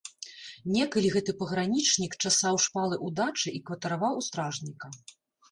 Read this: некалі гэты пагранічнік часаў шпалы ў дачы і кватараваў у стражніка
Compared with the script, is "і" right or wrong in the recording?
right